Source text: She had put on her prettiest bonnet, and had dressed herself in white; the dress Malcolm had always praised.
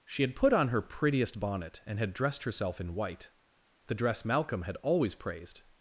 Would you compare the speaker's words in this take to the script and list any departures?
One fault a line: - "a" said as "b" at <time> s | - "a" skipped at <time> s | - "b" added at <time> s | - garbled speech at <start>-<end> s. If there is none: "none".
none